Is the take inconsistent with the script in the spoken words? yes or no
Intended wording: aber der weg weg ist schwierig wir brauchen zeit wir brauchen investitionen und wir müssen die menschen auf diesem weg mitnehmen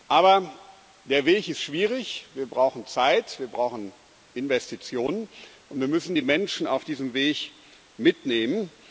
yes